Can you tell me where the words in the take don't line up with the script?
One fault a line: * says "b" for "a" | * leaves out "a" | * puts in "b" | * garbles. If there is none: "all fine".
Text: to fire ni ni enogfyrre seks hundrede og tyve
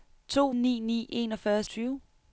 * leaves out "fire"
* leaves out "seks hundrede og"